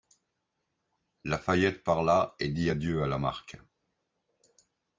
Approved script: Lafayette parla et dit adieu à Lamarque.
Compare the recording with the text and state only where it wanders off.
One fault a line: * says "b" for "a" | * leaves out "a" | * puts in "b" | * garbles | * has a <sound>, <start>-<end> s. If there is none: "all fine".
all fine